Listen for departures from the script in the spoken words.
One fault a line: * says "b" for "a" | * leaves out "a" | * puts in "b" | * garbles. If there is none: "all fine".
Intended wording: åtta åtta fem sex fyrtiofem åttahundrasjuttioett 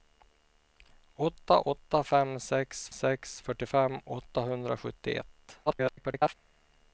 * puts in "sex"
* garbles